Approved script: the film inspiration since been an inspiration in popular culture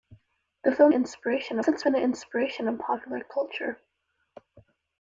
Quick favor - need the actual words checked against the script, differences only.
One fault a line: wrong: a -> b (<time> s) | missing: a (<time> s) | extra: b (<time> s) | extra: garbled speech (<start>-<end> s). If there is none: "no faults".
no faults